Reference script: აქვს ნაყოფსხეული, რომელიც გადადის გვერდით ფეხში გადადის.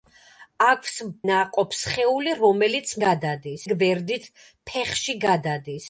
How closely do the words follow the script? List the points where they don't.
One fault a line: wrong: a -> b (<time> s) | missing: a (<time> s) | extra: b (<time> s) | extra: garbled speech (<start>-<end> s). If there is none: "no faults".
no faults